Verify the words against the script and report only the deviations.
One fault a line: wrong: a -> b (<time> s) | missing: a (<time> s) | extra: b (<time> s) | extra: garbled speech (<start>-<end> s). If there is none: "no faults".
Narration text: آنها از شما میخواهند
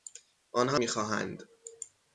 missing: از شما (0.8 s)